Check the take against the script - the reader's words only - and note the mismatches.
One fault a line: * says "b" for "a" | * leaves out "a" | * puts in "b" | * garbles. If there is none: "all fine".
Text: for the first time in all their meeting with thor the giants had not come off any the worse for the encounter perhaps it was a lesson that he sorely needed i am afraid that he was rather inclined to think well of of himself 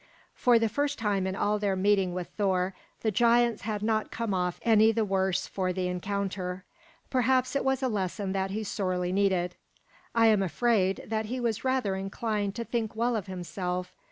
* leaves out "of"